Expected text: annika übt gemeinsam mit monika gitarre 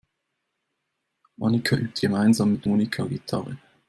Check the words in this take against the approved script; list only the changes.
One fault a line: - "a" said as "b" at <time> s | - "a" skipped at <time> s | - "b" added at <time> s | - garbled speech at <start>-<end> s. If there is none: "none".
none